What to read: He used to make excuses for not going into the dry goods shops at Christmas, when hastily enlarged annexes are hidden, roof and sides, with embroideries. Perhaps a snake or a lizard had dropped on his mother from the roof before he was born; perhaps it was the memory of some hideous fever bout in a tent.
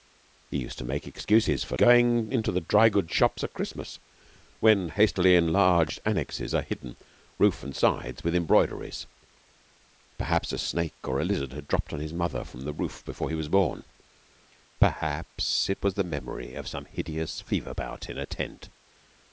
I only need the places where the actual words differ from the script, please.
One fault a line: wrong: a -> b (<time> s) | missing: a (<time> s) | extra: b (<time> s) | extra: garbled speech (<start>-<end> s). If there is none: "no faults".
missing: not (1.8 s)